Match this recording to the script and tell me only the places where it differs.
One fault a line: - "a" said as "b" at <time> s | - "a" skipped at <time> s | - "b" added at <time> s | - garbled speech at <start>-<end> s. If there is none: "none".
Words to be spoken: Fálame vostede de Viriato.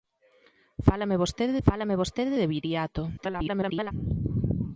- "fálame vostede" added at 1.7 s
- garbled speech at 3.2-3.9 s